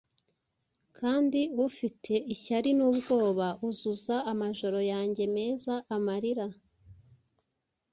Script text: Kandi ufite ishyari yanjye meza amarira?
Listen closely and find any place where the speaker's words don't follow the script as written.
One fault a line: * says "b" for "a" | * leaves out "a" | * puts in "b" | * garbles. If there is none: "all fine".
* puts in "n'ubwoba Uzuza amajoro"